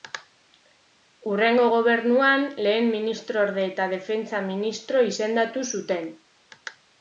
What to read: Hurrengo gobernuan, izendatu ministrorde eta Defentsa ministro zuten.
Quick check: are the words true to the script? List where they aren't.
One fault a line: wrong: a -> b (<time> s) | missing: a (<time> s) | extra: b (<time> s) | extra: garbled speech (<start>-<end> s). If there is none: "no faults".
wrong: izendatu -> lehen (2.7 s)
extra: izendatu (5.1 s)